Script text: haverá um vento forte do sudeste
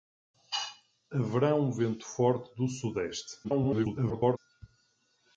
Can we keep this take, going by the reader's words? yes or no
no